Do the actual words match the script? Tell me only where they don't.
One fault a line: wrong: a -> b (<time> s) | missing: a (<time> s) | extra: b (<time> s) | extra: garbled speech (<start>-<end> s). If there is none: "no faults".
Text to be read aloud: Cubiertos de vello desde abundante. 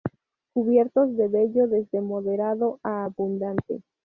extra: moderado a (2.0 s)